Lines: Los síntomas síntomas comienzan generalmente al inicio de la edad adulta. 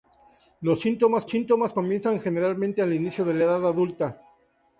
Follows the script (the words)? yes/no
yes